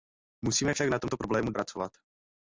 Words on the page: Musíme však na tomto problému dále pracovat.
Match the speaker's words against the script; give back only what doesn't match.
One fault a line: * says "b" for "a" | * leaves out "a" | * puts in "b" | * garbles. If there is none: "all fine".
* leaves out "dále"